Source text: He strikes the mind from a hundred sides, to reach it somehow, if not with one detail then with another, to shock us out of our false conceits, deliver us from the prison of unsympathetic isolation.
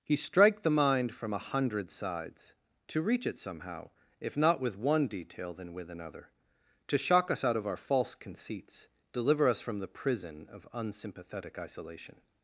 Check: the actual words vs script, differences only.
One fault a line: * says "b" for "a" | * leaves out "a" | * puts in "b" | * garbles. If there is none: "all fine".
* says "strike" for "strikes"